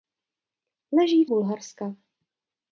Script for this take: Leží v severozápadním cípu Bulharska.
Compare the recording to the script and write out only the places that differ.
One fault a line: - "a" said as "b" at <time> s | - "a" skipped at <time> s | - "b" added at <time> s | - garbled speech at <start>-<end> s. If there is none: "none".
- "severozápadním cípu" skipped at 1.3 s